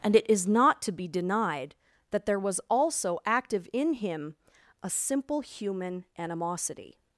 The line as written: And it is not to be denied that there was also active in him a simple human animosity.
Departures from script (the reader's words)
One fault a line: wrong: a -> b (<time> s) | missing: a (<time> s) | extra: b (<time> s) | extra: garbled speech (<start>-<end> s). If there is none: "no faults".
no faults